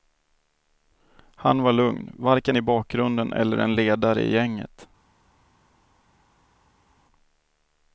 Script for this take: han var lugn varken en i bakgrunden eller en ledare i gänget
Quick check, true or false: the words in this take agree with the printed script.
false